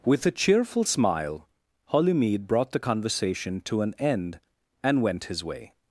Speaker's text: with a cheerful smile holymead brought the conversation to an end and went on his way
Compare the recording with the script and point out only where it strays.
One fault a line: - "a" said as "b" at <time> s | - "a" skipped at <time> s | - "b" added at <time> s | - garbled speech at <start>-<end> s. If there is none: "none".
- "on" skipped at 5.2 s